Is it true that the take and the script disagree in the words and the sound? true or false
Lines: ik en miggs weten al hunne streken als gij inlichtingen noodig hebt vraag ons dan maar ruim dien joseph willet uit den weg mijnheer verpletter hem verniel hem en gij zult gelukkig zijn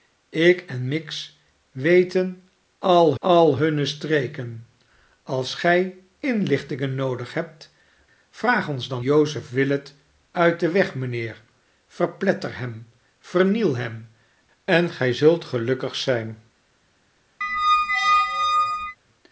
true